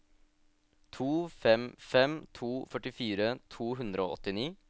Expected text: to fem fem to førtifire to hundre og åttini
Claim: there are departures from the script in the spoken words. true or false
false